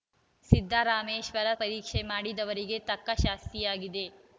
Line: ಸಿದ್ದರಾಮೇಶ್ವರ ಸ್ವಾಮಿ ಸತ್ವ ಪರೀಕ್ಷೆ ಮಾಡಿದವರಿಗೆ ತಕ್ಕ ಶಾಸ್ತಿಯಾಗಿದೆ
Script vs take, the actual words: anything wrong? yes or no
yes